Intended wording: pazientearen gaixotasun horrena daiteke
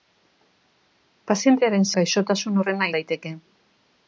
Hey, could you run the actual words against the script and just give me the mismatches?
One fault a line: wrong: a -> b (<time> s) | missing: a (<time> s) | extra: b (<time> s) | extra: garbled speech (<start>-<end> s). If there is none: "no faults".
no faults